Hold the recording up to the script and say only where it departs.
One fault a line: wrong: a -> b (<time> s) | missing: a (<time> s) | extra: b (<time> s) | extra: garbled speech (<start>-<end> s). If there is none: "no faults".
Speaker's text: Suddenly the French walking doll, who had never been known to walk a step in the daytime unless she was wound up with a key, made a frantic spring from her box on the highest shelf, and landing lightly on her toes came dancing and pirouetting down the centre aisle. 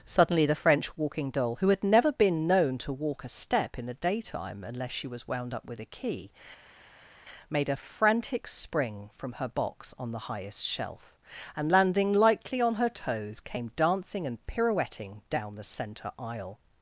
no faults